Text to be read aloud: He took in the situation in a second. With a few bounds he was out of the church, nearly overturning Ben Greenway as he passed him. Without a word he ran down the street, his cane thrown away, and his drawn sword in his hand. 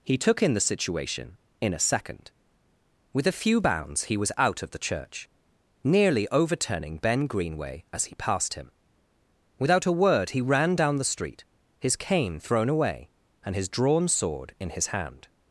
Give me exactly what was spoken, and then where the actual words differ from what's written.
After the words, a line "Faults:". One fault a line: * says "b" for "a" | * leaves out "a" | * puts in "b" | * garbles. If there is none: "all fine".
He took in the situation in a second. With a few bounds he was out of the church, nearly overturning Ben Greenway as he passed him. Without a word he ran down the street, his cane thrown away, and his drawn sword in his hand.
Faults:
all fine